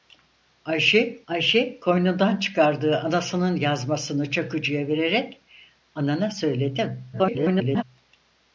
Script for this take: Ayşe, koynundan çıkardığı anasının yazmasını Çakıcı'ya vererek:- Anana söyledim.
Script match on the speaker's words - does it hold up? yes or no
no